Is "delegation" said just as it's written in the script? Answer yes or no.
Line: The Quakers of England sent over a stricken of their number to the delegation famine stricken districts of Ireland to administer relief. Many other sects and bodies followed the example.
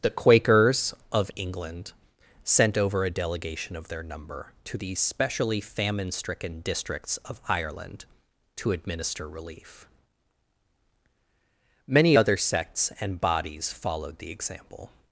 no